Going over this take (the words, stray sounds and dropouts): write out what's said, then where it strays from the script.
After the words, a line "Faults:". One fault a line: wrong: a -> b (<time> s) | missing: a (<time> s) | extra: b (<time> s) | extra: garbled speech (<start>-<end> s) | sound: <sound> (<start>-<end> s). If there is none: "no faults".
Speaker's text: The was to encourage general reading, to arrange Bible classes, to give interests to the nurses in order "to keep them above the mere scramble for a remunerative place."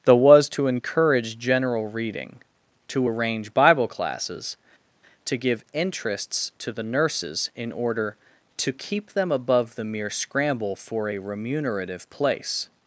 The was to encourage general reading, to arrange Bible classes, to give interests to the nurses in order "to keep them above the mere scramble for a remunerative place."
Faults:
no faults